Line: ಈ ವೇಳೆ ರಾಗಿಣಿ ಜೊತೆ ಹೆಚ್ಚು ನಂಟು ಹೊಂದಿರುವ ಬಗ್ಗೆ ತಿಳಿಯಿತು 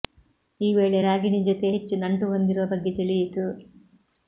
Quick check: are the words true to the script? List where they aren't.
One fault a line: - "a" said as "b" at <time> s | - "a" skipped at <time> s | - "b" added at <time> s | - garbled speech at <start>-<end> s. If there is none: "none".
none